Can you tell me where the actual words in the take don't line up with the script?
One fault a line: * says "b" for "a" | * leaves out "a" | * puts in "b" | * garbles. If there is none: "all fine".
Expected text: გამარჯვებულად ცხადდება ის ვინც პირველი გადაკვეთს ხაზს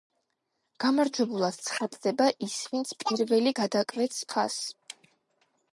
all fine